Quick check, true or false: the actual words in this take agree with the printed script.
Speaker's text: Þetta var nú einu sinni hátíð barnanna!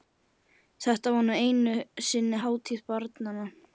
true